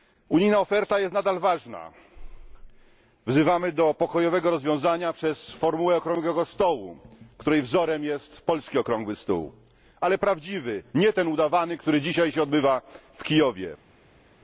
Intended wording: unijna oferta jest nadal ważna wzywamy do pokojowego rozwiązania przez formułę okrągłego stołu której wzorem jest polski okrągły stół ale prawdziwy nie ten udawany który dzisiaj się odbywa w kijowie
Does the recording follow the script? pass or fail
pass